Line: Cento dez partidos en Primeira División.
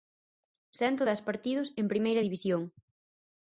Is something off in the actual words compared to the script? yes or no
no